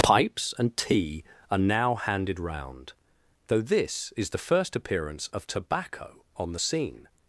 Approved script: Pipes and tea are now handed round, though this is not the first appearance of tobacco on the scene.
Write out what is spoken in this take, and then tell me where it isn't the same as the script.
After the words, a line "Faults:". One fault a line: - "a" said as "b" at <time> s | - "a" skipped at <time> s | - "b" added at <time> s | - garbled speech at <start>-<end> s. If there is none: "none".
Pipes and tea are now handed round, though this is the first appearance of tobacco on the scene.
Faults:
- "not" skipped at 4.3 s